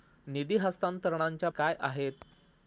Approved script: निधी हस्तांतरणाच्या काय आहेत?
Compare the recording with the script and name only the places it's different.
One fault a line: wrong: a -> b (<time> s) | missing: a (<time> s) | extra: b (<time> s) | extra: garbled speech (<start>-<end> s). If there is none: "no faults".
no faults